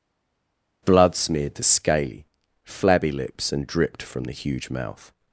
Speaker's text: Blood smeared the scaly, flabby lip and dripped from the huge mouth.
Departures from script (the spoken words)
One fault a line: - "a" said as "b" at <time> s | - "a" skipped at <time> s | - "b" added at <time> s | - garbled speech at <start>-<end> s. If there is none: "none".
- "lip" said as "lips" at 3.1 s